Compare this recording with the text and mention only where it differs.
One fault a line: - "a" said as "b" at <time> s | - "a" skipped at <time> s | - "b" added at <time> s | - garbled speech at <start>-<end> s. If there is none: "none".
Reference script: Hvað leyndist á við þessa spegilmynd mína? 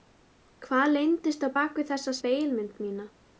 - "bak" added at 1.6 s